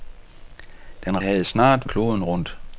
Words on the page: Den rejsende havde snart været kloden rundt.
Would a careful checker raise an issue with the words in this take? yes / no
yes